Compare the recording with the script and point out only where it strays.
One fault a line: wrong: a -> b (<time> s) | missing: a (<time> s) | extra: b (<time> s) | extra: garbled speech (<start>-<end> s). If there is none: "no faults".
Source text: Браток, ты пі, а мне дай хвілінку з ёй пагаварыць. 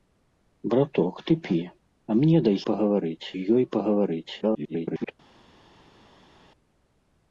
wrong: хвілінку -> пагаварыць (2.7 s)
extra: garbled speech (4.4-5.1 s)